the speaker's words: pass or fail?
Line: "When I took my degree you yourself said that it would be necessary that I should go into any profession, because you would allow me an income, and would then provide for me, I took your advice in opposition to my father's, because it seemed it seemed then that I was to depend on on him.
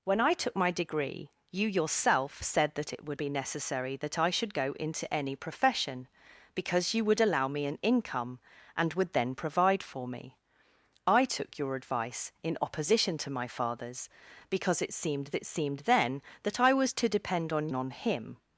pass